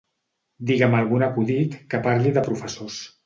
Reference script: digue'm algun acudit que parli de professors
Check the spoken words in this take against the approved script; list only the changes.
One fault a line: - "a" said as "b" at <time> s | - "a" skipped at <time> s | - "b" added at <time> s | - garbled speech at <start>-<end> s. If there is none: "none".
none